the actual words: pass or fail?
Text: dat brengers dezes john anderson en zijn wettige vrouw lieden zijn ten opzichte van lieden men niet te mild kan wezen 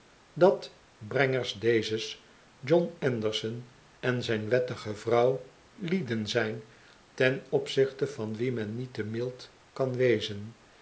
fail